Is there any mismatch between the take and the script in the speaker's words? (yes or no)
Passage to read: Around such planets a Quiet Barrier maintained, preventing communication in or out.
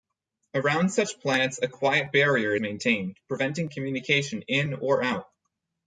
no